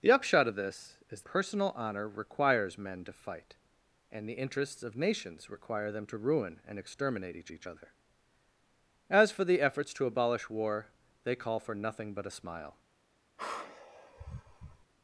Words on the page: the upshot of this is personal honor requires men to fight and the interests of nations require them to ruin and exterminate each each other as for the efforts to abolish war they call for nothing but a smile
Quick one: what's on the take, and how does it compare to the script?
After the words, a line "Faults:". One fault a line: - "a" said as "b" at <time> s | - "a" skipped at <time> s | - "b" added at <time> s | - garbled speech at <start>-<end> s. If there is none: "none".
the upshot of this is personal honor requires men to fight and the interests of nations require them to ruin and exterminate each each other as for the efforts to abolish war they call for nothing but a smile
Faults:
none